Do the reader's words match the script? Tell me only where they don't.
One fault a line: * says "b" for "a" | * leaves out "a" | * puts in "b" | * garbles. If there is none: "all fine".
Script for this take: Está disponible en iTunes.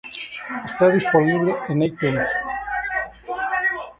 all fine